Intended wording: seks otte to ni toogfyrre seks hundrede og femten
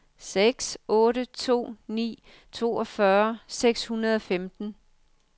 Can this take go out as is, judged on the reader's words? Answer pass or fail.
pass